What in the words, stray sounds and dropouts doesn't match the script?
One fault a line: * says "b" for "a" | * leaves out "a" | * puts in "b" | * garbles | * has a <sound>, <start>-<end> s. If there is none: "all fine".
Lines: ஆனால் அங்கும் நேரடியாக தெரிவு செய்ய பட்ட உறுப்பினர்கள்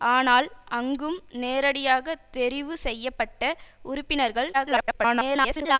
* garbles